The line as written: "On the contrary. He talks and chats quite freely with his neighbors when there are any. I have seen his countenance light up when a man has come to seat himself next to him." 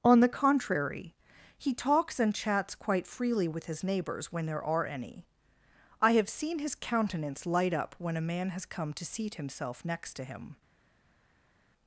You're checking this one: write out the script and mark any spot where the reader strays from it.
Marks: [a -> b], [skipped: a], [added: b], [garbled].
"On the contrary. He talks and chats quite freely with his neighbors when there are any. I have seen his countenance light up when a man has come to seat himself next to him."